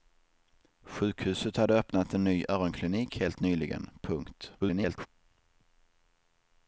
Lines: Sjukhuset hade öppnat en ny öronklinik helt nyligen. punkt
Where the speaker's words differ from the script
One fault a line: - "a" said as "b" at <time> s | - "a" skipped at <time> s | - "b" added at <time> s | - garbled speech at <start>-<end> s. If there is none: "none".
- garbled speech at 4.6-5.1 s